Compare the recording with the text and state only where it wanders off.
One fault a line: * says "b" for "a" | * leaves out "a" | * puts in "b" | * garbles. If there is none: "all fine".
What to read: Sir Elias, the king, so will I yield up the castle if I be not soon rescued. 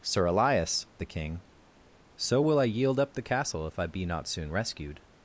all fine